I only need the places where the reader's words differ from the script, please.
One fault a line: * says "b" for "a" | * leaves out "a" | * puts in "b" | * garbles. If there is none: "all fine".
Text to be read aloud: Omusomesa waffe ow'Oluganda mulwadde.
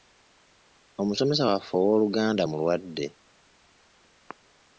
all fine